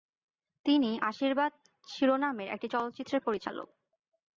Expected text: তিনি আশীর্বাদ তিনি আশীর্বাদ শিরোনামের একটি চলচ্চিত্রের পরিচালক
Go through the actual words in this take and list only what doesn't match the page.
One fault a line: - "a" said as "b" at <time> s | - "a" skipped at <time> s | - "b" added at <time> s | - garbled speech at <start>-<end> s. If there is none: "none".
- "তিনি আশীর্বাদ" skipped at 1.5 s